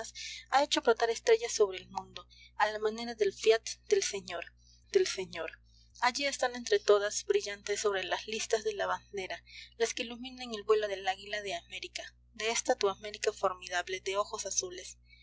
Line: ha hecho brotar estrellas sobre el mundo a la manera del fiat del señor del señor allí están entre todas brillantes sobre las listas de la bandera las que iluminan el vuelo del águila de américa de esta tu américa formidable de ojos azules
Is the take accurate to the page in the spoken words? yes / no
yes